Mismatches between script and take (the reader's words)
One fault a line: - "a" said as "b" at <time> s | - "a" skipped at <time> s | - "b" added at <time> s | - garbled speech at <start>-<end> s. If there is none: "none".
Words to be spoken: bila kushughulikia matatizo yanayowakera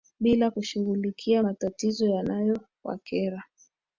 none